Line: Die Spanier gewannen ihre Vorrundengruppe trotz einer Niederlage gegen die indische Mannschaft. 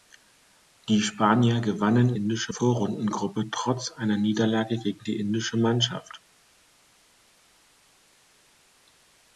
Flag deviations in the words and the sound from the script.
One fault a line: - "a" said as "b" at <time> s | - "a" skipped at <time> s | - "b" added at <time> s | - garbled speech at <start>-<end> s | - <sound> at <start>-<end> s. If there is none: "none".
- "ihre" said as "indische" at 2.1 s